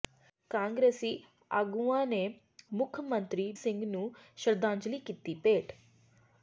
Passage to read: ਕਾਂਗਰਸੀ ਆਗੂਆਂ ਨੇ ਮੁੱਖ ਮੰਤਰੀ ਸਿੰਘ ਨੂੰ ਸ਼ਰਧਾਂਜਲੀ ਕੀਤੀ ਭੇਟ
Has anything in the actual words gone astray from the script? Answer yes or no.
no